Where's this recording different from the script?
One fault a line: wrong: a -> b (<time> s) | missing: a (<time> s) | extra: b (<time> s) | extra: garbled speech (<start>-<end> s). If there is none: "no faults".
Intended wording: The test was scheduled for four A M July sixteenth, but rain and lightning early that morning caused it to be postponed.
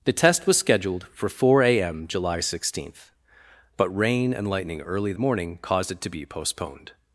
missing: that (5.1 s)